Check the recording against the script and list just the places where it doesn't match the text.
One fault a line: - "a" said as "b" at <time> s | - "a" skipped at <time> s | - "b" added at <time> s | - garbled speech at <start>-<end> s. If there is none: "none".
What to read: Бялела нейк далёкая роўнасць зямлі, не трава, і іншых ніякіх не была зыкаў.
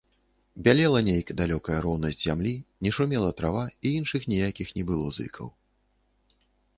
- "шумела" added at 3.0 s
- "была" said as "было" at 4.9 s